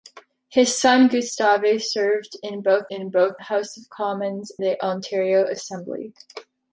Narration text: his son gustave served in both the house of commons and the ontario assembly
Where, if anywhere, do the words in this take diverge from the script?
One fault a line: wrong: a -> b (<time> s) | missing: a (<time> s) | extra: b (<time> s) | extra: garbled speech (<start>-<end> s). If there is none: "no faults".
extra: in both (2.9 s)
missing: and (4.5 s)